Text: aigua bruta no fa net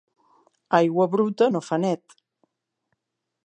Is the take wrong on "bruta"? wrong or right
right